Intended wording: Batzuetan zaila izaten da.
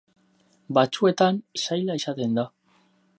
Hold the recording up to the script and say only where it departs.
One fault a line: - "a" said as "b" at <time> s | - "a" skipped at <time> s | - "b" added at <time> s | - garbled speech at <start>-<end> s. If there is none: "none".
none